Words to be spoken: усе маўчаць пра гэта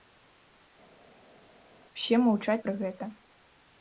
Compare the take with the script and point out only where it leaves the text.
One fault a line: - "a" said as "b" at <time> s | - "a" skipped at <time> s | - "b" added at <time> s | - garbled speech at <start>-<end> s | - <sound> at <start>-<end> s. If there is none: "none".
none